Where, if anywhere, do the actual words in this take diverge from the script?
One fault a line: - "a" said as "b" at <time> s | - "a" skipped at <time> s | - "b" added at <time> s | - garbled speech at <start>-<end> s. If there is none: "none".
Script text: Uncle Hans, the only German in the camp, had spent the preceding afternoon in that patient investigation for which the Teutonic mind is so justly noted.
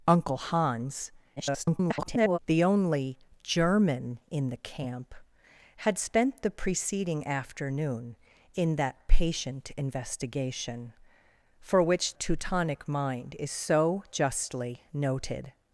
- garbled speech at 1.4-2.4 s
- "the" skipped at 12.2 s